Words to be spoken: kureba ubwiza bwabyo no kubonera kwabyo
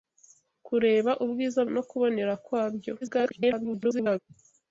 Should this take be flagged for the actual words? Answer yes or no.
yes